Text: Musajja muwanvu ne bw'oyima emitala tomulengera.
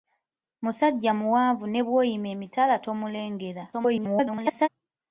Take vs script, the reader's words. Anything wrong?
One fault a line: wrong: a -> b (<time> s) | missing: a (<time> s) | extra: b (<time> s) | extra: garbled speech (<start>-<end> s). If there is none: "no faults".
extra: garbled speech (3.7-4.7 s)